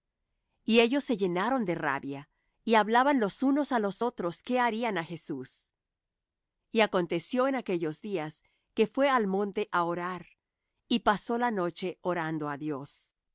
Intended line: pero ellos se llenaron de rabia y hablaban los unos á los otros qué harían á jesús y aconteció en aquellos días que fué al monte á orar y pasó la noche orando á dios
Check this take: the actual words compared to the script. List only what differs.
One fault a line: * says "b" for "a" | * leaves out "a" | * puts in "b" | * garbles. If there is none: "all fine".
* says "y" for "pero"